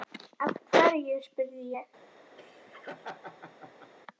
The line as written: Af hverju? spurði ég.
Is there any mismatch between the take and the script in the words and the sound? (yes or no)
yes